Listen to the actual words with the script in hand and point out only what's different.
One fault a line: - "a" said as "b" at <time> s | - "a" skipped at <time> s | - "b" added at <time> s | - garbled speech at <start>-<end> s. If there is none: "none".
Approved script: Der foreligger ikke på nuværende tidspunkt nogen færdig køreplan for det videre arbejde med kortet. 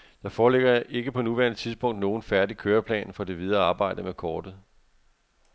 none